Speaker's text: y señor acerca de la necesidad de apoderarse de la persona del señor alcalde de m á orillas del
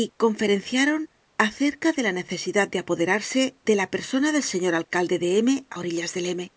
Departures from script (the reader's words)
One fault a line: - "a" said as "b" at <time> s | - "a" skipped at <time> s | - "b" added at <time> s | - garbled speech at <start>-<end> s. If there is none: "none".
- "señor" said as "conferenciaron" at 0.2 s